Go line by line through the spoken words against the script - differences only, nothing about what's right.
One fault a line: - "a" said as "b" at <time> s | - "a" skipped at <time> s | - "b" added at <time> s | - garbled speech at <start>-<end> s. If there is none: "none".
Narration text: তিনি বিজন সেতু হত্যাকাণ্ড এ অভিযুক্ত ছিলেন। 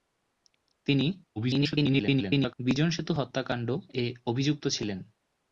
- garbled speech at 1.4-2.5 s